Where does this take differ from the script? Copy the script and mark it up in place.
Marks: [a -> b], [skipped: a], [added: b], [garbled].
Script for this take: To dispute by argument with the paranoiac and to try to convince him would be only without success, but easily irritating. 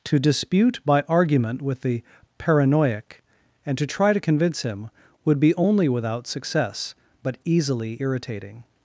To dispute by argument with the paranoiac and to try to convince him would be only without success, but easily irritating.